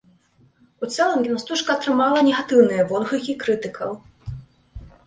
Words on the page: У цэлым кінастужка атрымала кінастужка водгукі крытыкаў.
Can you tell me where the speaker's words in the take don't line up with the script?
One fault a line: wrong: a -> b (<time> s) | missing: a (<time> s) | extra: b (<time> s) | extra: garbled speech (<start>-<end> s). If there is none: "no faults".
wrong: кінастужка -> негатыўныя (2.3 s)